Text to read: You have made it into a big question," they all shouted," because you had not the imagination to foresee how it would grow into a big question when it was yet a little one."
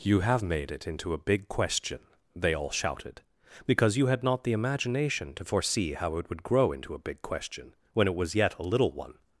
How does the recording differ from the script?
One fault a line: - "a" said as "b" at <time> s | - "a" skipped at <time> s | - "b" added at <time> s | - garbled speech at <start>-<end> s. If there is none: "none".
none